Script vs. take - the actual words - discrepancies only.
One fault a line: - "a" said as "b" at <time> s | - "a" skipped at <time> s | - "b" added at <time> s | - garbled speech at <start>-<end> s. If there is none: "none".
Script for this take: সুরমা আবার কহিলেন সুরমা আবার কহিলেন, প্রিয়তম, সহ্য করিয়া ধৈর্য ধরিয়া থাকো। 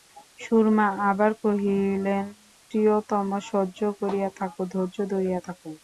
- "সুরমা আবার কহিলেন" skipped at 2.2 s
- "থাকো" added at 4.4 s